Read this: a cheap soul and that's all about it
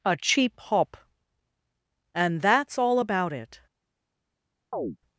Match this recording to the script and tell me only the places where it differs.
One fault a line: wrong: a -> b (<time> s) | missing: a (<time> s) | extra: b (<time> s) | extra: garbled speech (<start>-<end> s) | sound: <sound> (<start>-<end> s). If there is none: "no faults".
wrong: soul -> hop (0.6 s)
sound: chirp (4.7-5.0 s)